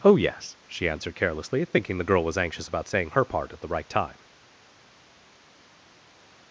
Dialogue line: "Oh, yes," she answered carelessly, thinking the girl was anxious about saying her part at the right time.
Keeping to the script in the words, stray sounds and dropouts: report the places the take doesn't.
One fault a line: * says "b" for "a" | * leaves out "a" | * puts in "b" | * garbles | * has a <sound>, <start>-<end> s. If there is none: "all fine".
all fine